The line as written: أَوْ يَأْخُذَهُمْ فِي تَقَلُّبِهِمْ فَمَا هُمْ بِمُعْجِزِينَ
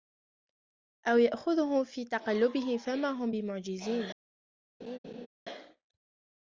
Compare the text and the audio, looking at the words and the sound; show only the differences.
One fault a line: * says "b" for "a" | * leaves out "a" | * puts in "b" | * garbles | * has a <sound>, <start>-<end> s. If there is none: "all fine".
* has a laugh, 4.8-5.3 s